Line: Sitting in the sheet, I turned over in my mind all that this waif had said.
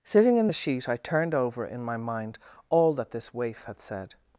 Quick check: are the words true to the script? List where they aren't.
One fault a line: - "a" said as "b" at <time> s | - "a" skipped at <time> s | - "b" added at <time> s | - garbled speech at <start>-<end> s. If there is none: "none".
none